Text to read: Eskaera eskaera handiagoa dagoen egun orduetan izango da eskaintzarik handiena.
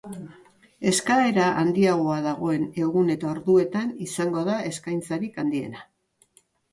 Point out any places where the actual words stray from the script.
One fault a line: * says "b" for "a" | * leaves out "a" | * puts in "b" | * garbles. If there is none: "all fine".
* leaves out "eskaera"
* puts in "eta"